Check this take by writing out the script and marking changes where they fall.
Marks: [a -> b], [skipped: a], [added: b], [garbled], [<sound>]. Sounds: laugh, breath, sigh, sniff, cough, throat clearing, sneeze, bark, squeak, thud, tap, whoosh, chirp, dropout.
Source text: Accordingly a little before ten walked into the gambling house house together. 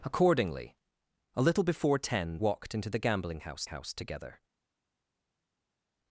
Accordingly a little before ten walked into the gambling house house together.